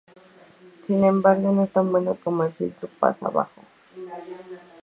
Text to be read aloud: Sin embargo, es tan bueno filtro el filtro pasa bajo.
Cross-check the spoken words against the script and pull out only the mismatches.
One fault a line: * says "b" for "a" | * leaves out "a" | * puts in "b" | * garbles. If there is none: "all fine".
* puts in "no"
* says "como" for "filtro"